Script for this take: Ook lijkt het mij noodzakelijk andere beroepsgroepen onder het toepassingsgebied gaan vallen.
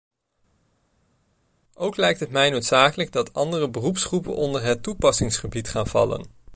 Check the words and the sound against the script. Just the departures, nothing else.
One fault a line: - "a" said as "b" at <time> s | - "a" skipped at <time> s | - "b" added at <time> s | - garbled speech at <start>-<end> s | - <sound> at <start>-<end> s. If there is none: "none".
- "dat" added at 3.1 s